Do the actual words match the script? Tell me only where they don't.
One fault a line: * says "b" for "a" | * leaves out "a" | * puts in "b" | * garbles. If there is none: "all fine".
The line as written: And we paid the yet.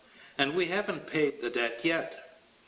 * puts in "haven't"
* puts in "debt"